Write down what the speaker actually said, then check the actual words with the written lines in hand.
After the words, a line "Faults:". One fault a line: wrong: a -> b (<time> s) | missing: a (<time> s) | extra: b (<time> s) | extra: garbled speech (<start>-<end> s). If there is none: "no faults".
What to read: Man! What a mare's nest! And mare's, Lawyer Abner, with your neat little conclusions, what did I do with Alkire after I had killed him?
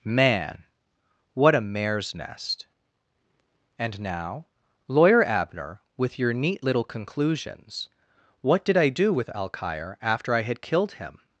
Man! What a mare's nest! And now, Lawyer Abner, with your neat little conclusions, what did I do with Alkire after I had killed him?
Faults:
wrong: mare's -> now (4.0 s)